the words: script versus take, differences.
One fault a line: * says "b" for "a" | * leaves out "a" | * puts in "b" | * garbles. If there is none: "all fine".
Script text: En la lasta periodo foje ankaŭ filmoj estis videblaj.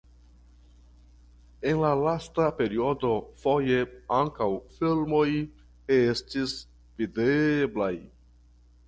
all fine